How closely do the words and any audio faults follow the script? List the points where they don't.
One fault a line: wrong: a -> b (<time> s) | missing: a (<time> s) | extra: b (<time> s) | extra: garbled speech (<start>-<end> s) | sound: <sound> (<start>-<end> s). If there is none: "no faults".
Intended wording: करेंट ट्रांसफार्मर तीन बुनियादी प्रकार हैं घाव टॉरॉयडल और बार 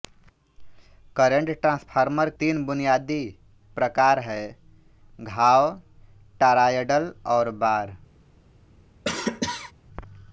sound: cough (9.0-9.7 s)